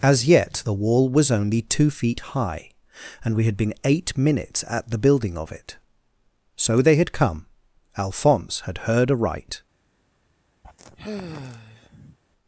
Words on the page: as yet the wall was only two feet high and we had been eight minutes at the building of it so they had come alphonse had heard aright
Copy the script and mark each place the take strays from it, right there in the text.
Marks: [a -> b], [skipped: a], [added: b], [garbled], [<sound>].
as yet the wall was only two feet high and we had been eight minutes at the building of it so they had come alphonse had heard aright [sigh]